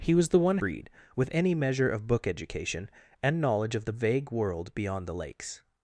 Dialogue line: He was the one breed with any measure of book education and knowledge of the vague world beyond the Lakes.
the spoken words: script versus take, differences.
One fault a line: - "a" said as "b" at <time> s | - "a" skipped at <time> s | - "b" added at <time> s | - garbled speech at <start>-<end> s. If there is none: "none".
none